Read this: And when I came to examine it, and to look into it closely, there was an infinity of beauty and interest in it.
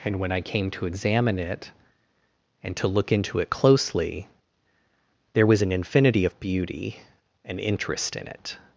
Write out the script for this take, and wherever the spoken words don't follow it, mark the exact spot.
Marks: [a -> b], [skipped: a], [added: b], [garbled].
And when I came to examine it, and to look into it closely, there was an infinity of beauty and interest in it.